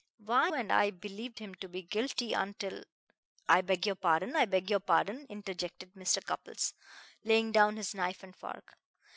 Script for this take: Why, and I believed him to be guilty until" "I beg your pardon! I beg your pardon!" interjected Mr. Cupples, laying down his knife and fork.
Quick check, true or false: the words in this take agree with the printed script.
true